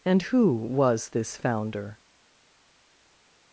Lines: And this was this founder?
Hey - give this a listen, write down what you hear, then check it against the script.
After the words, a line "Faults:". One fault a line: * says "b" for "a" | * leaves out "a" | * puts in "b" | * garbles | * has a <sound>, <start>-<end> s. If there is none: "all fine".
And who was this founder?
Faults:
* says "who" for "this"